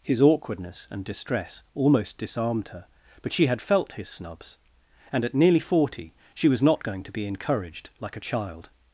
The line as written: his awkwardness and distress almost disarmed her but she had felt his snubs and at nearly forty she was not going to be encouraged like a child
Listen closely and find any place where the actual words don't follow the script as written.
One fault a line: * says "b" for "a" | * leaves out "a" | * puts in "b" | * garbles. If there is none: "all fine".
all fine